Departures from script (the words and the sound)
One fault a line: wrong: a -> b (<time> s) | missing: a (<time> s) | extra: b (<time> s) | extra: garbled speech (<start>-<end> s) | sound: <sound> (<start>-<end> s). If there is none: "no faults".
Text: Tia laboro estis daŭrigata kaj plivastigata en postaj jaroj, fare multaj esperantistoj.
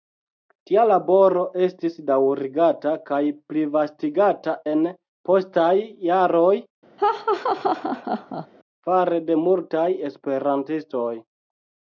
sound: laugh (7.0-8.5 s)
extra: de (9.3 s)